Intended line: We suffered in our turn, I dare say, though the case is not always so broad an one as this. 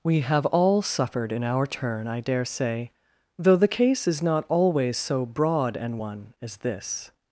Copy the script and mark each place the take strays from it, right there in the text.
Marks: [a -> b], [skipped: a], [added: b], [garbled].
We [added: have all] suffered in our turn, I dare say, though the case is not always so broad an one as this.